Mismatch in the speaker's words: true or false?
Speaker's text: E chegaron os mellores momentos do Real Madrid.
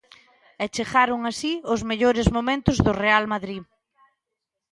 true